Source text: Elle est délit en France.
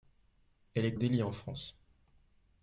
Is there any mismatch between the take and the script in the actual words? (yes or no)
no